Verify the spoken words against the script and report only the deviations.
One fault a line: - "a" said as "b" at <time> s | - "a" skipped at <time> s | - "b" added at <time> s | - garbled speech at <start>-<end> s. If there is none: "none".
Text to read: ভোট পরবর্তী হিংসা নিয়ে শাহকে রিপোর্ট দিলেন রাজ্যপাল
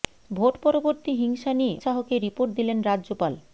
none